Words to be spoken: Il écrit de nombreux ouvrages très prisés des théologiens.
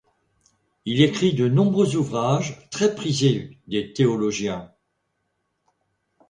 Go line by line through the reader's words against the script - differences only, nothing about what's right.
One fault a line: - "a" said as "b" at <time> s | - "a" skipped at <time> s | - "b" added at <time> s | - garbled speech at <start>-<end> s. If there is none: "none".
none